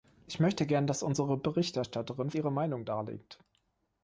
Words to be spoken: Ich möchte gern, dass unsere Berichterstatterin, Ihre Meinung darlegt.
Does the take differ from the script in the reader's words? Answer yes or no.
no